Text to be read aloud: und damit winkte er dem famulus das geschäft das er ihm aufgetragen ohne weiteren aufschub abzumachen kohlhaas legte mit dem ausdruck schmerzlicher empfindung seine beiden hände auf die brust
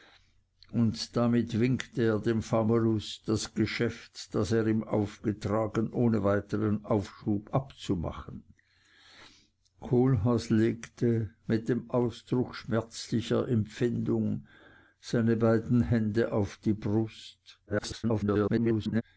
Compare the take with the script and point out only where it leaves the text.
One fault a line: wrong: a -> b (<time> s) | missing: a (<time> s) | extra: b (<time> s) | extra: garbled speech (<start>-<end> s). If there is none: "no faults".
extra: garbled speech (17.7-19.0 s)